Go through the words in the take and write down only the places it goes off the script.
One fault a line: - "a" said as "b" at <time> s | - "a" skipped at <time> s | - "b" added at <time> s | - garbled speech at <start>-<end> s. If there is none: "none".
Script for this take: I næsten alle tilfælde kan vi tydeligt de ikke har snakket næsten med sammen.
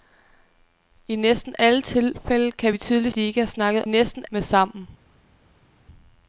none